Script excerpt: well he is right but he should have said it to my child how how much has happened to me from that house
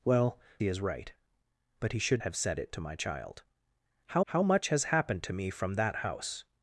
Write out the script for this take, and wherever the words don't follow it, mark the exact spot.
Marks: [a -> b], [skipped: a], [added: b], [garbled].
well he is right but he should have said it to my child how how much has happened to me from that house